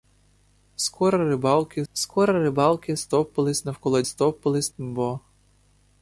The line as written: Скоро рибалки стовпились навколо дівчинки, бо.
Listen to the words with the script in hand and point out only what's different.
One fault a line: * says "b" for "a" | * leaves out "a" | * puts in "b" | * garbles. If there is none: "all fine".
* puts in "скоро рибалки"
* says "стовпились" for "дівчинки"